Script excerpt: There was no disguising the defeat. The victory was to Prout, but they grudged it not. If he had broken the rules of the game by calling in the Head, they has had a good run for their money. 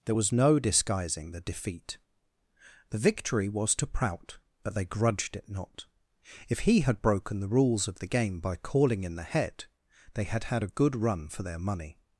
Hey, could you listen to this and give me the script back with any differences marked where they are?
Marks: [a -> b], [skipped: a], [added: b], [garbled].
There was no disguising the defeat. The victory was to Prout, but they grudged it not. If he had broken the rules of the game by calling in the Head, they [has -> had] had a good run for their money.